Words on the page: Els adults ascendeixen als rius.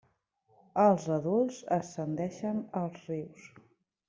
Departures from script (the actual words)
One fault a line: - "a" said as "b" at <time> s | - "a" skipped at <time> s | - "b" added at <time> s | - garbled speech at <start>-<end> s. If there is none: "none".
none